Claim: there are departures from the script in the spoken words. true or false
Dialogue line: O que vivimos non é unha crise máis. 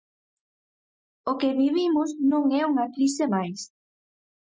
false